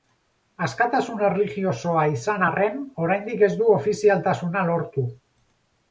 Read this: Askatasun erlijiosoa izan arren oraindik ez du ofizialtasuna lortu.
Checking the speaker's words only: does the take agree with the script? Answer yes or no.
yes